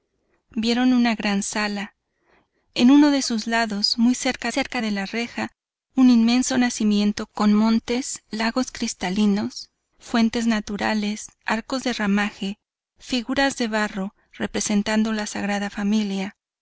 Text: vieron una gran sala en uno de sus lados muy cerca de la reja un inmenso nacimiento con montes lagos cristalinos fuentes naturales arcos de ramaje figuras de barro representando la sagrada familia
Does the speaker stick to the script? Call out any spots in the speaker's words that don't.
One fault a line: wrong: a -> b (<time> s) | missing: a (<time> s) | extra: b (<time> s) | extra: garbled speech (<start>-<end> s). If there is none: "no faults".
extra: cerca (4.5 s)